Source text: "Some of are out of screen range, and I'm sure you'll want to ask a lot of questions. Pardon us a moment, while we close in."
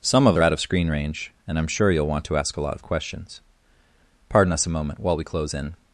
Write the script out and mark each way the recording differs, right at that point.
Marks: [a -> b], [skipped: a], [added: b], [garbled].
"Some of are out of screen range, and I'm sure you'll want to ask a lot of questions. Pardon us a moment, while we close in."